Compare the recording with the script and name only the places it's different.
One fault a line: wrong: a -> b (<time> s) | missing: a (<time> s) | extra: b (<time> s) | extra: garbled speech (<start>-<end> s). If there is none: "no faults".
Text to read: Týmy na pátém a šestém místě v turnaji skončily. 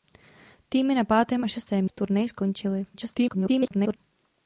missing: místě (1.9 s)
extra: garbled speech (2.9-4.0 s)